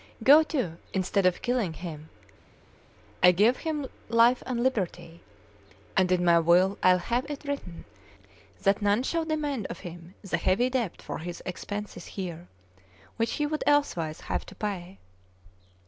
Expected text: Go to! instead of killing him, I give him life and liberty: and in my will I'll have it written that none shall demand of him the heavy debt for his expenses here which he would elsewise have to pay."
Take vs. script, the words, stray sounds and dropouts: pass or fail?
pass